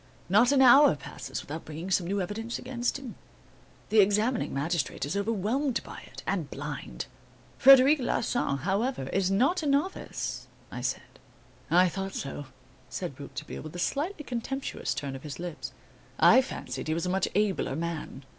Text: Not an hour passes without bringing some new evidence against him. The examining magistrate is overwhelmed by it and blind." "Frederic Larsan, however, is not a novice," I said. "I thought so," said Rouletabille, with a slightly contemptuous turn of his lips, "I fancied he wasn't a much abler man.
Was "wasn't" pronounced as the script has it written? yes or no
no